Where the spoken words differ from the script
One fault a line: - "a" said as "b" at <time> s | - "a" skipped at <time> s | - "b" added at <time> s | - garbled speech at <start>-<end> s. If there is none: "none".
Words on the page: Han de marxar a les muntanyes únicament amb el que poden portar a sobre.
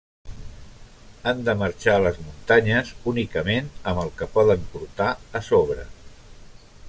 none